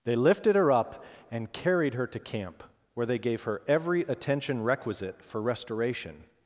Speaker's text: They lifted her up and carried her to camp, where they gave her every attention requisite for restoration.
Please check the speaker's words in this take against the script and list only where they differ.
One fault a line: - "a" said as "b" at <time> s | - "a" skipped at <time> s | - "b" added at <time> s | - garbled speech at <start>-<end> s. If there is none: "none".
none